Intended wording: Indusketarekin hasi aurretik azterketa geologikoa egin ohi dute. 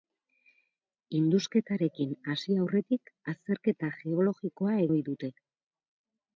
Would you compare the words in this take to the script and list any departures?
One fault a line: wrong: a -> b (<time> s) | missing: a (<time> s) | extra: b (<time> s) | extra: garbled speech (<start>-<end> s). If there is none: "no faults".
missing: egin (4.8 s)